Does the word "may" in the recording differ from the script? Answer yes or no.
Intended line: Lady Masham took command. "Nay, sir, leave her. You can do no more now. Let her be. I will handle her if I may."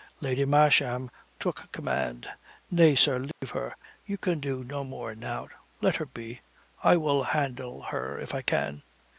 yes